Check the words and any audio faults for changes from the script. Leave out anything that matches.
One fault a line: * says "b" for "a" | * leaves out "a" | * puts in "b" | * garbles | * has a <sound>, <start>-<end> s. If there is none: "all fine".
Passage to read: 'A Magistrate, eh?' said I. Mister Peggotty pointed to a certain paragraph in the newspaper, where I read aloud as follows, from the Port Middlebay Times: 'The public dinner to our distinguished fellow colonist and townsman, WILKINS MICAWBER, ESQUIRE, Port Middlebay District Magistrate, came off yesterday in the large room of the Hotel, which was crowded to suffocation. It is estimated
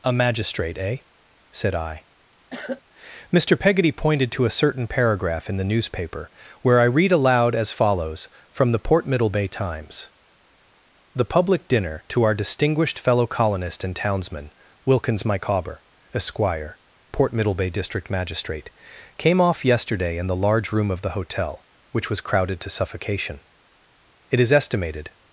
* has a cough, 2.5-2.8 s